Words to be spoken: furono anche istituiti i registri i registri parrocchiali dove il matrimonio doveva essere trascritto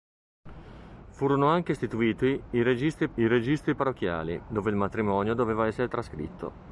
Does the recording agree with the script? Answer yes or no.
yes